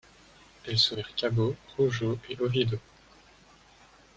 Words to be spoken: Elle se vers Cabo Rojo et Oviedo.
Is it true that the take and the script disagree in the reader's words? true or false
false